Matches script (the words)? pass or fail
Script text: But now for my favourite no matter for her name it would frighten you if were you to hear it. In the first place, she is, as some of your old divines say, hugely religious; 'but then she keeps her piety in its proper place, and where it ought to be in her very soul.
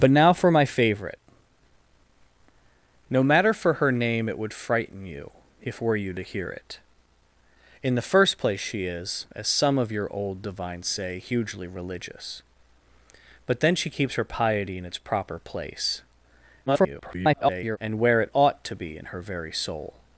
fail